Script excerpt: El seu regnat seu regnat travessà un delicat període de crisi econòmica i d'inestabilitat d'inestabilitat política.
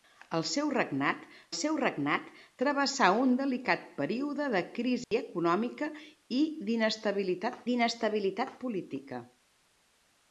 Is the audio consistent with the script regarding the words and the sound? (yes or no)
no